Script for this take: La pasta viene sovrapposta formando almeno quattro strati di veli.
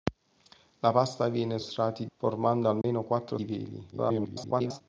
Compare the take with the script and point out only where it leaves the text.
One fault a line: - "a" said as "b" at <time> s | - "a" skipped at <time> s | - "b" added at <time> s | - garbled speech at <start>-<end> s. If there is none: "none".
- "sovrapposta" said as "strati" at 1.6 s
- "strati" skipped at 3.4 s
- garbled speech at 3.9-4.8 s